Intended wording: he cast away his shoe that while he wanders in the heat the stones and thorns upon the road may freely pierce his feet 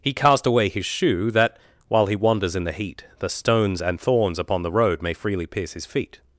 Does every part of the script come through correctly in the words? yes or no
yes